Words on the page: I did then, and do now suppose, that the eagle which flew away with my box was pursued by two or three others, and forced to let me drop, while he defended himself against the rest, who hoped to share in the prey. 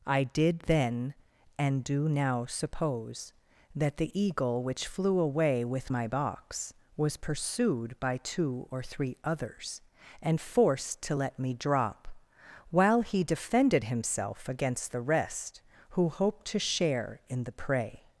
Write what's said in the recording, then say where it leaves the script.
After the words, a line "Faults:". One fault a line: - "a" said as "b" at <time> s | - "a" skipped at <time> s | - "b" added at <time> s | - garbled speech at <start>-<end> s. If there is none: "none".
I did then, and do now suppose, that the eagle which flew away with my box was pursued by two or three others, and forced to let me drop, while he defended himself against the rest, who hoped to share in the prey.
Faults:
none